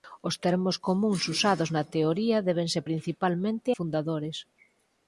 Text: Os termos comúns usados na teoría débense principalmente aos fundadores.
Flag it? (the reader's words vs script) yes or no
yes